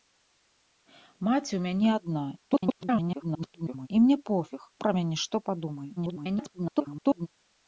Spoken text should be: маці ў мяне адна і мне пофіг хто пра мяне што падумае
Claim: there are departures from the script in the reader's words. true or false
true